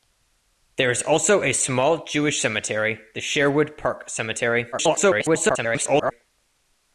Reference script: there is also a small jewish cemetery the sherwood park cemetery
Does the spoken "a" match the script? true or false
true